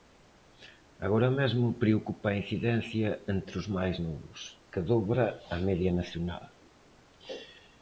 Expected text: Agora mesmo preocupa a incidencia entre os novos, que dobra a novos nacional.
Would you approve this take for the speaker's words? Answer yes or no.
no